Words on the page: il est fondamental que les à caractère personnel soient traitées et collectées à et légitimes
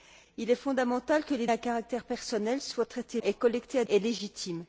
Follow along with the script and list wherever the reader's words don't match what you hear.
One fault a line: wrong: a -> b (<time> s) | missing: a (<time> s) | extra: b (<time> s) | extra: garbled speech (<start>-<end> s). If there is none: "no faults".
no faults